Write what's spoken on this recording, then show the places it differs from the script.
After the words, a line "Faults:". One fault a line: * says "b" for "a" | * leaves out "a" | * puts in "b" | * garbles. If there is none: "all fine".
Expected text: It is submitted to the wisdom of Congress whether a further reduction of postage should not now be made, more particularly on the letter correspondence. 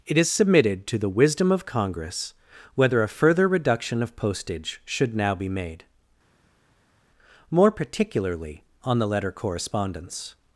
It is submitted to the wisdom of Congress whether a further reduction of postage should now be made, more particularly on the letter correspondence.
Faults:
* leaves out "not"